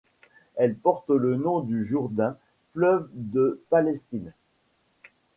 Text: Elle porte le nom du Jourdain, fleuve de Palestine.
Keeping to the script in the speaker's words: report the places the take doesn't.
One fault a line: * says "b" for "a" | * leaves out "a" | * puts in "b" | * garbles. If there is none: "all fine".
all fine